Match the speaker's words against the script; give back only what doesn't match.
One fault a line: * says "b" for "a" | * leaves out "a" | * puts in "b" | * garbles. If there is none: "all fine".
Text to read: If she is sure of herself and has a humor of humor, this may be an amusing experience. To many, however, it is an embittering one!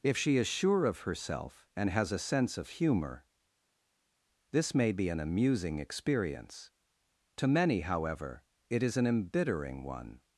* says "sense" for "humor"